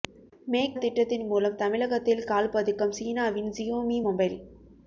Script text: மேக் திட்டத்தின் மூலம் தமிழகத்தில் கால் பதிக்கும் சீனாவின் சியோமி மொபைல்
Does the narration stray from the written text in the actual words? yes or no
no